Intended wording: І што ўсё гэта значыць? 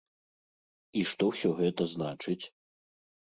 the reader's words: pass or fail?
pass